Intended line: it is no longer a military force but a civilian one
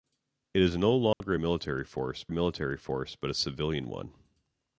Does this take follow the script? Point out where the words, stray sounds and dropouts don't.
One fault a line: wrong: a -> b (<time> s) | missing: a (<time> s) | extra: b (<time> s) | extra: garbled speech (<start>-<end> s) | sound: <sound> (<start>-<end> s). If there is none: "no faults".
sound: dropout (1.1-1.2 s)
extra: military force (2.3 s)